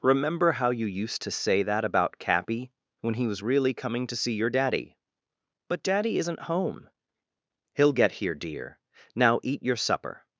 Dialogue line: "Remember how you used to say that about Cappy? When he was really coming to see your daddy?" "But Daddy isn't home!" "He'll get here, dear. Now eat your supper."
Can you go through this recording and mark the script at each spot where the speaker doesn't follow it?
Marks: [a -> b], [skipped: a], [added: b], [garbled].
"Remember how you used to say that about Cappy? When he was really coming to see your daddy?" "But Daddy isn't home!" "He'll get here, dear. Now eat your supper."